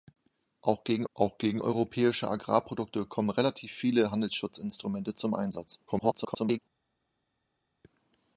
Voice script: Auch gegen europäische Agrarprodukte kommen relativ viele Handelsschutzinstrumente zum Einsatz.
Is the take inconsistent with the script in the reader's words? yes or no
yes